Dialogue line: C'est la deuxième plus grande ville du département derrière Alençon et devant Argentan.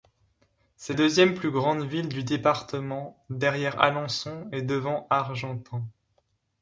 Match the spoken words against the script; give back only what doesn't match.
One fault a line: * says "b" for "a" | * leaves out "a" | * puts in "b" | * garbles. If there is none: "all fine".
* leaves out "la"